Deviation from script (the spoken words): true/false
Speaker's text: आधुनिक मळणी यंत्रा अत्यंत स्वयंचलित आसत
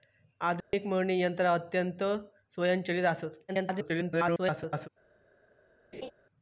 true